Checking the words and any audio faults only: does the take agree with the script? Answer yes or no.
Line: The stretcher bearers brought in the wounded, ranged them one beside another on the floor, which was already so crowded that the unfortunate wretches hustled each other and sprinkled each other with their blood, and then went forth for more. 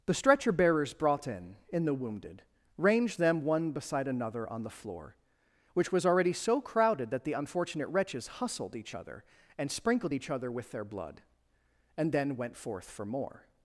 no